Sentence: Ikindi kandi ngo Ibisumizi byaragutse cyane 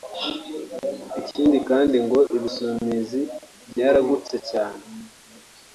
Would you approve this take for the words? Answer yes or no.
yes